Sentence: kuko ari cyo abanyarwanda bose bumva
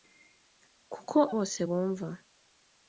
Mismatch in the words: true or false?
true